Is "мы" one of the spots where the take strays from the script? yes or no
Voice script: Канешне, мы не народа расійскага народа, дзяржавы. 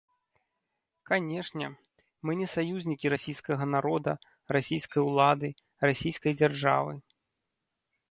no